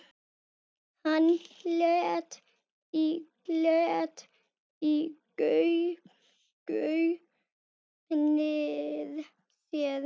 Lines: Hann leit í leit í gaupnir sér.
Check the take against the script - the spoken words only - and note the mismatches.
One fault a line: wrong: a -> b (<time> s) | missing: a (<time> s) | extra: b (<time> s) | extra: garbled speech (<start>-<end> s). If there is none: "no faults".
no faults